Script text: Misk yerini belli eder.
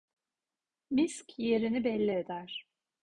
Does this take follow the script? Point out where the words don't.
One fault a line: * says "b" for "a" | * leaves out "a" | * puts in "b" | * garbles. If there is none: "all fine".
all fine